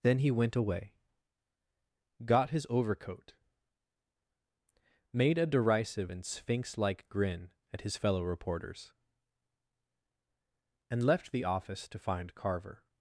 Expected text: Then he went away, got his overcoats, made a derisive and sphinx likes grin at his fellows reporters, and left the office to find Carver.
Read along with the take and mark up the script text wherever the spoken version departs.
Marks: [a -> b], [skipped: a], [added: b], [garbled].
Then he went away, got his [overcoats, -> overcoat] made a derisive and sphinx [likes -> like] grin at his [fellows -> fellow] reporters, and left the office to find Carver.